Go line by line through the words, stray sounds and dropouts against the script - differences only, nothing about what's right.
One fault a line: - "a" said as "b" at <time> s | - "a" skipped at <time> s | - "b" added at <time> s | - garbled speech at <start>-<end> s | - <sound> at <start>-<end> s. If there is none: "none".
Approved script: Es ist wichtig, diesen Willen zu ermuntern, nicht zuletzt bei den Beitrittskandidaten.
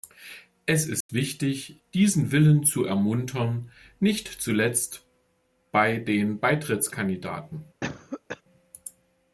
- dropout at 1.0-1.1 s
- cough at 7.8-8.4 s